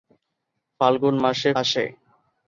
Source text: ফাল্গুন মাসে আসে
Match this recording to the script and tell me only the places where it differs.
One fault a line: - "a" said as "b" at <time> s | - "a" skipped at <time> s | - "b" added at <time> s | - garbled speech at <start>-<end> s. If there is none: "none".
none